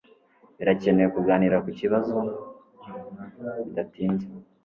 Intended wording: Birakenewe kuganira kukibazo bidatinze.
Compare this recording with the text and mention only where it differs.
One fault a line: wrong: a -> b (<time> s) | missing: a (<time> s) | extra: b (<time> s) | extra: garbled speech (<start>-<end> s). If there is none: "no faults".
no faults